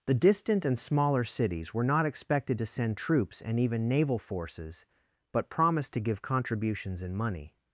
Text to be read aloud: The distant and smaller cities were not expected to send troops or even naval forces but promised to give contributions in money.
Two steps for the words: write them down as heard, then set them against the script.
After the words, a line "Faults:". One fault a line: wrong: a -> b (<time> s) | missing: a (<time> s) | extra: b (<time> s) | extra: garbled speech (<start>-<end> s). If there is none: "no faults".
The distant and smaller cities were not expected to send troops and even naval forces but promised to give contributions in money.
Faults:
wrong: or -> and (3.4 s)